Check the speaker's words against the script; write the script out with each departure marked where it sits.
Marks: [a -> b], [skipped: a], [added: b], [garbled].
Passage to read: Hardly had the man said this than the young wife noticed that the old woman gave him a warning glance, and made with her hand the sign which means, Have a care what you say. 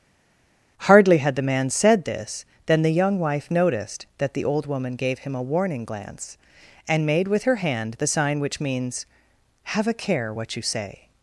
Hardly had the man said this than the young wife noticed that the old woman gave him a warning glance, and made with her hand the sign which means, Have a care what you say.